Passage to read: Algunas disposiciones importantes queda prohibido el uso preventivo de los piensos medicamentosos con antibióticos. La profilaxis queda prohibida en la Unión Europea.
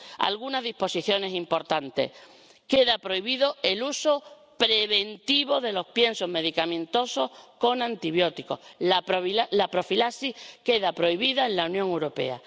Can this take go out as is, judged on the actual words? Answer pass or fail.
pass